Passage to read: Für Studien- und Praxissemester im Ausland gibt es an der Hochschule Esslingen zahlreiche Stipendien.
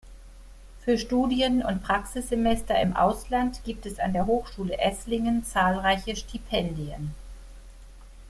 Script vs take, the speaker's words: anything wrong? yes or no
no